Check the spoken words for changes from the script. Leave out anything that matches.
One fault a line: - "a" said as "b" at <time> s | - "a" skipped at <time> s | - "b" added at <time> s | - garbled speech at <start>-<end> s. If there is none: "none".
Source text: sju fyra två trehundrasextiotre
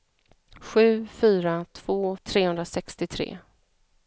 none